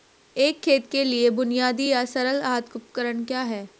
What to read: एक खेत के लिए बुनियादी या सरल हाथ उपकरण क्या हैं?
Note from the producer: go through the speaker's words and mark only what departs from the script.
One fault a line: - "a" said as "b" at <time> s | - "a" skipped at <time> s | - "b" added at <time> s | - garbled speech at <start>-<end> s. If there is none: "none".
none